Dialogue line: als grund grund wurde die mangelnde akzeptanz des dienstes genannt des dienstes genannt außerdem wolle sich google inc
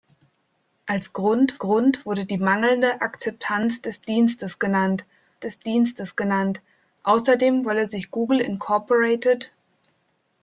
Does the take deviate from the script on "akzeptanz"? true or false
false